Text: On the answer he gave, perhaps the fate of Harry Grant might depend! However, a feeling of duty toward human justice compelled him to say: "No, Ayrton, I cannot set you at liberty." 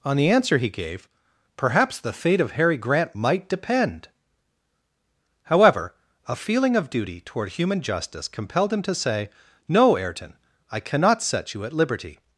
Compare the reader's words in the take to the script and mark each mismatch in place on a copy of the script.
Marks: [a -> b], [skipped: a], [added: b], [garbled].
On the answer he gave, perhaps the fate of Harry Grant might depend! However, a feeling of duty toward human justice compelled him to say: "No, Ayrton, I cannot set you at liberty."